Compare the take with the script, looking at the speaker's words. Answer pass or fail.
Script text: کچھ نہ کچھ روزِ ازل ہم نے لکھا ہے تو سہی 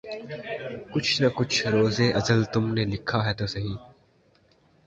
fail